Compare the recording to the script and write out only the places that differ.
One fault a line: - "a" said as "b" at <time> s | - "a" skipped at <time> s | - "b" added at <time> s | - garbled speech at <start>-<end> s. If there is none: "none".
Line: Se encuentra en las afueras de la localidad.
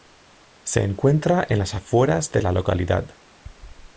none